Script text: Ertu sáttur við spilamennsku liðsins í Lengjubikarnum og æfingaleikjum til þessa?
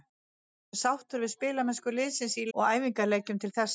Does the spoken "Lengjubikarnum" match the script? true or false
false